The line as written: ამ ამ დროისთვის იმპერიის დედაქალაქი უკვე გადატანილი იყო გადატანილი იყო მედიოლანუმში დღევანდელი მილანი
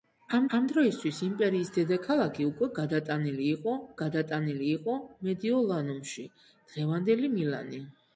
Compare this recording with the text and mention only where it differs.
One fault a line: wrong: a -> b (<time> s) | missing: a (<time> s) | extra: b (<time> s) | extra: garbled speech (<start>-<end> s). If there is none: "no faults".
no faults